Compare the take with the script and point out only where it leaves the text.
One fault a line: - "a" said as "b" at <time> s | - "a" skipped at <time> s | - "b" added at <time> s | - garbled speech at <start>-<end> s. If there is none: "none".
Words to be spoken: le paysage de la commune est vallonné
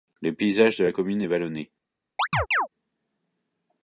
none